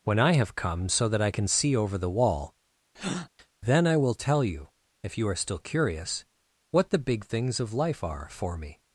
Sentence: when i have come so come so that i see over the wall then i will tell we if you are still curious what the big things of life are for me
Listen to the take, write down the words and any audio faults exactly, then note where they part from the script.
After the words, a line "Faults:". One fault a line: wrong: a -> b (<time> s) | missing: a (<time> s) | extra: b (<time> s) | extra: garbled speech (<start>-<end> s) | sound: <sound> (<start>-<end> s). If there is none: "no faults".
when i have come so that i can see over the wall then i will tell you if you are still curious what the big things of life are for me
Faults:
missing: come so (1.1 s)
extra: can (1.3 s)
sound: breath (2.9-3.3 s)
wrong: we -> you (4.4 s)